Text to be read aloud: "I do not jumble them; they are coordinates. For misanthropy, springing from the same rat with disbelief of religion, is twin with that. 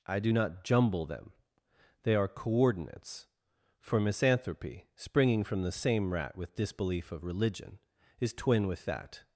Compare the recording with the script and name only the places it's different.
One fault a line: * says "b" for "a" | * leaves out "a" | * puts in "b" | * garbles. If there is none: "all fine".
all fine